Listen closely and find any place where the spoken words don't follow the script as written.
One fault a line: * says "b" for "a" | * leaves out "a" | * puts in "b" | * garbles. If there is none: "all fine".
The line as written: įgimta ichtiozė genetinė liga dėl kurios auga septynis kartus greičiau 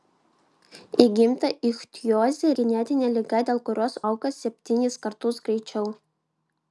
all fine